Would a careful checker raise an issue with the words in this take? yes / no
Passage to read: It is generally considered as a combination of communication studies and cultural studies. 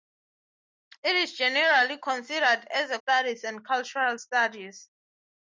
yes